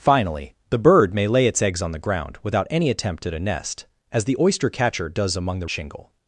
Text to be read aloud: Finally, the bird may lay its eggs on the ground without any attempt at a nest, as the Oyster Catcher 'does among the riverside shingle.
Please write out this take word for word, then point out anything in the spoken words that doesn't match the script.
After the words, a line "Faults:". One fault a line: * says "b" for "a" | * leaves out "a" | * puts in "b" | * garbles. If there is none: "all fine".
Finally, the bird may lay its eggs on the ground without any attempt at a nest, as the Oyster Catcher 'does among the shingle.
Faults:
* leaves out "riverside"